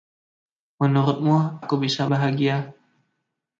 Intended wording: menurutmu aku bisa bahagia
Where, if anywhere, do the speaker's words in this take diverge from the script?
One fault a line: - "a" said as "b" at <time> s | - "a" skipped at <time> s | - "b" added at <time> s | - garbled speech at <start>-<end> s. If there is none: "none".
none